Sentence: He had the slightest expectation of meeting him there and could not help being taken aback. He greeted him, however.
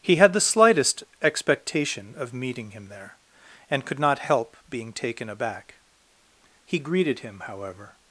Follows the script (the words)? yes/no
yes